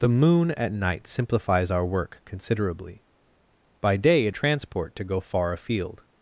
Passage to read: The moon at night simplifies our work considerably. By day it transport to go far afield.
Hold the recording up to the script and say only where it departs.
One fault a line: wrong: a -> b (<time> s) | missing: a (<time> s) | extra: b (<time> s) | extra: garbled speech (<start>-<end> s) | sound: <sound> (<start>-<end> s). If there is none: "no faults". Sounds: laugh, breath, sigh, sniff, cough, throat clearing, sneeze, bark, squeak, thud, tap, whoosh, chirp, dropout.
no faults